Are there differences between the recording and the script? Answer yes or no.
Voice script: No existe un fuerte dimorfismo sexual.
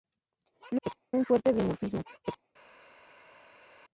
yes